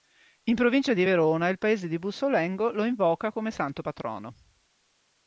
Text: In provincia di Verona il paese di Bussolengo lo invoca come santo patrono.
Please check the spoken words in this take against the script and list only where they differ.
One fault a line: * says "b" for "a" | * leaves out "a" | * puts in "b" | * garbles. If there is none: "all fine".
all fine